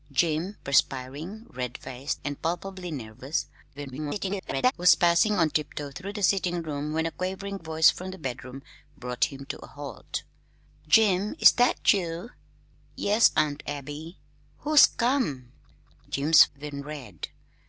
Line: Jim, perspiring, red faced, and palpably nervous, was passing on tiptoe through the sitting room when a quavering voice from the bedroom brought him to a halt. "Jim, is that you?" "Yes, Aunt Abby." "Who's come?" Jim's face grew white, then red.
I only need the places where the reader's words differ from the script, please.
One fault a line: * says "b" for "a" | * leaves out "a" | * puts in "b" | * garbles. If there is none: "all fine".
* garbles
* leaves out "face grew white"